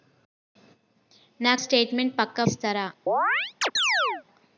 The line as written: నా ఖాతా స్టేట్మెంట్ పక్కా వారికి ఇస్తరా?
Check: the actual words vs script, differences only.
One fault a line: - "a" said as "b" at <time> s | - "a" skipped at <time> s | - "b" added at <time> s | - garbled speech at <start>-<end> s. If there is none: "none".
- "ఖాతా" skipped at 1.5 s
- "వారికి" skipped at 2.4 s